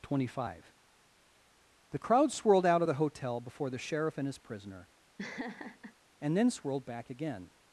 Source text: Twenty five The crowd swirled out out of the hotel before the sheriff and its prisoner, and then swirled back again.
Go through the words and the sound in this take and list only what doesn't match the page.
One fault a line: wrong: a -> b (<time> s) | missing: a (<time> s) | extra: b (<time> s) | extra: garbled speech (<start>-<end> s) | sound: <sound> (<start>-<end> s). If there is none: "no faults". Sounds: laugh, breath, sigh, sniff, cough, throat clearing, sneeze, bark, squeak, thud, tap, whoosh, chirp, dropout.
missing: out (2.8 s)
wrong: its -> his (4.3 s)
sound: laugh (5.2-5.9 s)